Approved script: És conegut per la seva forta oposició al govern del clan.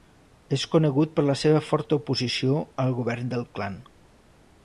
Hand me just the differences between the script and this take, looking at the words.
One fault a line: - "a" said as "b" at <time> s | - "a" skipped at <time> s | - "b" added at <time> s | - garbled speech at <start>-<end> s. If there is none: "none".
none